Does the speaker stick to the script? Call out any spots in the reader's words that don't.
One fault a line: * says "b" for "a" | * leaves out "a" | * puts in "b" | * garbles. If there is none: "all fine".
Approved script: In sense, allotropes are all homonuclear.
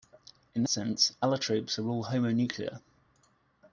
all fine